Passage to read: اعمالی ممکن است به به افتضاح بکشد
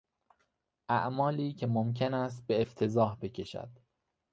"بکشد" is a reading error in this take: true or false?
false